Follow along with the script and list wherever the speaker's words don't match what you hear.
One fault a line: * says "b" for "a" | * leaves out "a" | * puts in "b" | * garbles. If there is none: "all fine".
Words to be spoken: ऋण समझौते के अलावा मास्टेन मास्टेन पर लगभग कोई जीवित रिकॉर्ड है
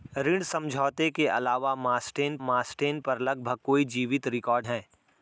all fine